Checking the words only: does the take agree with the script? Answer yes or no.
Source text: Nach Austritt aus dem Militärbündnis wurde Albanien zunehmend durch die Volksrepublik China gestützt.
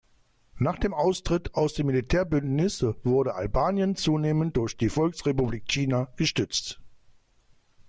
no